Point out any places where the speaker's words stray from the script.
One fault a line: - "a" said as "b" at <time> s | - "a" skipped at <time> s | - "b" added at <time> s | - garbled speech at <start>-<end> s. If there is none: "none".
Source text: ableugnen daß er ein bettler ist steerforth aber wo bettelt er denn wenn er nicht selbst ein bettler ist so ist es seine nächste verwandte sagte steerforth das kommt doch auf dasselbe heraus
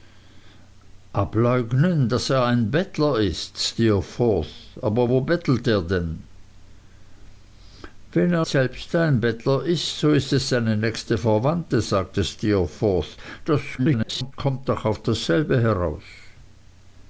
- "nicht" skipped at 8.4 s
- garbled speech at 13.8-14.3 s